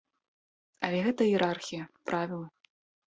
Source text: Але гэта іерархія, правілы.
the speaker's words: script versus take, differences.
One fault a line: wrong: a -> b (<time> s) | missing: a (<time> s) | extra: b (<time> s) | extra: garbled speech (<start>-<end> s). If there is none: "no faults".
no faults